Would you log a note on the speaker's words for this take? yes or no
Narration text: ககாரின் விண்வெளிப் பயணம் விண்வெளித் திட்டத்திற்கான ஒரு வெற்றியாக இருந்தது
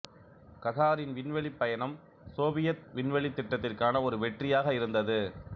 yes